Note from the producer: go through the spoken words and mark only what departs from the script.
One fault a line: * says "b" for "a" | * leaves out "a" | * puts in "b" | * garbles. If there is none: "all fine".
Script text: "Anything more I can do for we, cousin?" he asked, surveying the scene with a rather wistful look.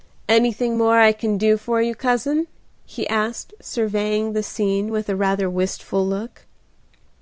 * says "you" for "we"